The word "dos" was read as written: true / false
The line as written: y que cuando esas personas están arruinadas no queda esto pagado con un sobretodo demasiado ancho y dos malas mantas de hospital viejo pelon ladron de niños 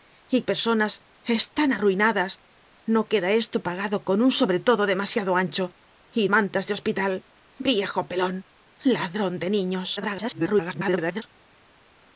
false